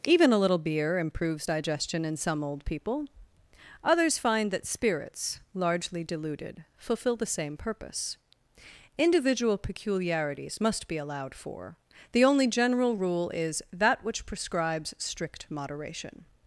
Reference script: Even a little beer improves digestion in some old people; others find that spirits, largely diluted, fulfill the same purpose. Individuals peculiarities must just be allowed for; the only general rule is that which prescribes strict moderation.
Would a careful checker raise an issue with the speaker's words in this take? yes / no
yes